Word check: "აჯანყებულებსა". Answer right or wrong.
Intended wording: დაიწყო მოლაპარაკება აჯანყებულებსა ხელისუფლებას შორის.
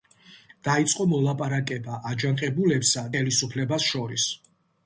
right